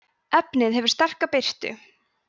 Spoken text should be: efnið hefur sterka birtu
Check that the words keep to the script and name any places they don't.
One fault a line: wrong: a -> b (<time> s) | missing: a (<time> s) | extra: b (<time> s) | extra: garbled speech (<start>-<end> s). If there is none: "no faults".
no faults